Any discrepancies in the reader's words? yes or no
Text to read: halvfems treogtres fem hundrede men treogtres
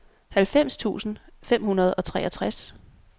yes